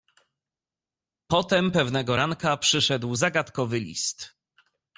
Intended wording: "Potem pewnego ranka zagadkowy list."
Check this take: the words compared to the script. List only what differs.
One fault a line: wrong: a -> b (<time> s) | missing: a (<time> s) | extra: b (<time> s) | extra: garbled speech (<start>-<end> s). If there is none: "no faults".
extra: przyszedł (2.6 s)